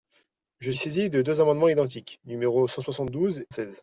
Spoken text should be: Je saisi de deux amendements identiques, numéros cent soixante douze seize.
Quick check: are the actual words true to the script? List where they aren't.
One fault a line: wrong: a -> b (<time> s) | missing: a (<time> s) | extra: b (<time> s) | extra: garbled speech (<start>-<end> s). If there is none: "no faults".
no faults